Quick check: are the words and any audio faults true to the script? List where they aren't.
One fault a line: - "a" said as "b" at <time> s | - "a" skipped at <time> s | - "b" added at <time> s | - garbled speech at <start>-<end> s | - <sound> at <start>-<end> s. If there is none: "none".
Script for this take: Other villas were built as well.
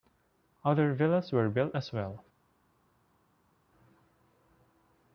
none